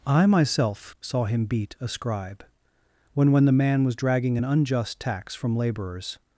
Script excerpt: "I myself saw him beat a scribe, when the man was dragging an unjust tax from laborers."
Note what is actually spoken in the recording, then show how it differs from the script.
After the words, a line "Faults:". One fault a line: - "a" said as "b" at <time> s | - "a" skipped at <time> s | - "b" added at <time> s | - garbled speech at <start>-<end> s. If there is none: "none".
"I myself saw him beat a scribe, when when the man was dragging an unjust tax from laborers."
Faults:
- "when" added at 3.3 s